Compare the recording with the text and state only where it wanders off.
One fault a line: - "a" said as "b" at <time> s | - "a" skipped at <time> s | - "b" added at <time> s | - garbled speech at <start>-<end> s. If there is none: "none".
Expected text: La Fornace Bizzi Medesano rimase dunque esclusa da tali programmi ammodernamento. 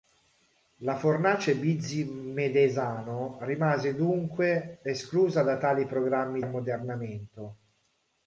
none